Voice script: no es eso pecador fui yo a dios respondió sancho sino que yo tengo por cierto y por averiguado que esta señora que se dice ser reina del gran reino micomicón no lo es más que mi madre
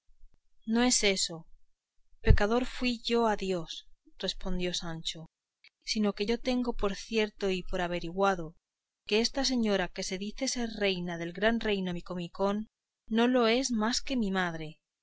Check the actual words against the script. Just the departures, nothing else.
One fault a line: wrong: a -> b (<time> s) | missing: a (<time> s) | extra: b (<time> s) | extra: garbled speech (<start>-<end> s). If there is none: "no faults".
no faults